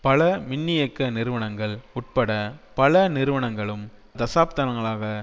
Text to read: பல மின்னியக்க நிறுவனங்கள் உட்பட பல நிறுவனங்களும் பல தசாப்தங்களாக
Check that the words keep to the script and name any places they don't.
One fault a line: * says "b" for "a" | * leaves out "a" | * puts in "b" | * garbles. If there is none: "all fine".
* leaves out "பல"